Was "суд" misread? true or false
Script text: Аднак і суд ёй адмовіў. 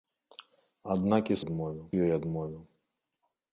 true